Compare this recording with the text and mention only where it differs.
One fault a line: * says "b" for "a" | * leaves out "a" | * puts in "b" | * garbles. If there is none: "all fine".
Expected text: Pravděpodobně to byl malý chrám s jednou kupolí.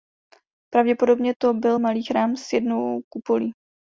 all fine